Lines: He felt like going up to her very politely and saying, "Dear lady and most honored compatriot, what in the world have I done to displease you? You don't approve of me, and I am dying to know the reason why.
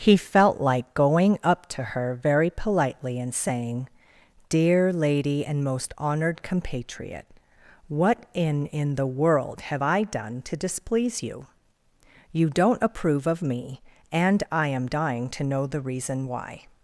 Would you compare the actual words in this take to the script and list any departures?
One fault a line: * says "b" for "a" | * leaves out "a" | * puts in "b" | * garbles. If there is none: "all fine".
* puts in "in"